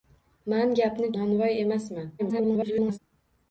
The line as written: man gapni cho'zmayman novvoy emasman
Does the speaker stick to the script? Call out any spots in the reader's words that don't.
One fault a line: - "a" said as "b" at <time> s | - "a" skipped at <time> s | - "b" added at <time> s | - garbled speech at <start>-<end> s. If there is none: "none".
- "cho'zmayman" skipped at 1.1 s
- garbled speech at 2.2-3.0 s